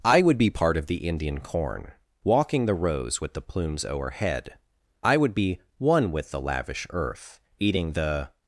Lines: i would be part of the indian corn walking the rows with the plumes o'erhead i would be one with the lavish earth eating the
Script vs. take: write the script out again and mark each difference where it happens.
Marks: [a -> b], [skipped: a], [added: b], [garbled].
i would be part of the indian corn walking the rows with the plumes o'erhead i would be one with the lavish earth eating the